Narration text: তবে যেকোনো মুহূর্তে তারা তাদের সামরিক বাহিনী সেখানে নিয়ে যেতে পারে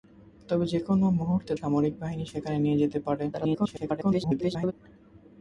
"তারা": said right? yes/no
no